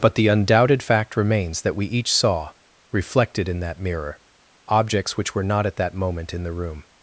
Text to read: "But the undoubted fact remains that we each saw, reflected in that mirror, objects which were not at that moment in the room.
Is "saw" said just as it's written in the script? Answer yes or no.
yes